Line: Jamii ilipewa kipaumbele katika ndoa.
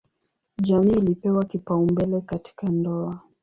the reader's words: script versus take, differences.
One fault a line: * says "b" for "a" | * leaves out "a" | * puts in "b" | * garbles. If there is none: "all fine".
all fine